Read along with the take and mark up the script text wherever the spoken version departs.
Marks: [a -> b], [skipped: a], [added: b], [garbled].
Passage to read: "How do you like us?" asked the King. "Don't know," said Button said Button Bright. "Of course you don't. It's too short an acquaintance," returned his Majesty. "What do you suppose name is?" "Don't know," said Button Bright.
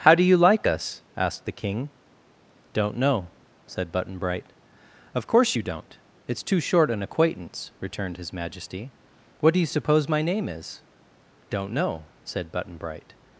"How do you like us?" asked the King. "Don't know," said Button [skipped: said Button] Bright. "Of course you don't. It's too short an acquaintance," returned his Majesty. "What do you suppose [added: my] name is?" "Don't know," said Button Bright.